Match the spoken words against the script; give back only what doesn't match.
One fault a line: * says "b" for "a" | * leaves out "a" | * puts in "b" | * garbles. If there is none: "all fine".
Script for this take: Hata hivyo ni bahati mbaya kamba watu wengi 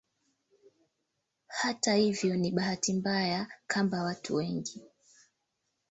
all fine